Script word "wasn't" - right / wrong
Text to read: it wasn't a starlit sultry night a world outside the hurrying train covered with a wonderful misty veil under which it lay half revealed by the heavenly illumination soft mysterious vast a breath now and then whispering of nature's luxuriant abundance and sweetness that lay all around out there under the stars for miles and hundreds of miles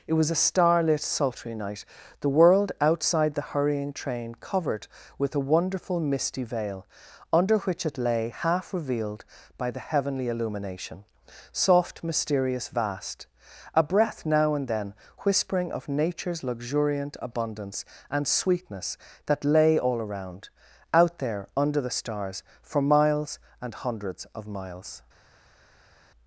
wrong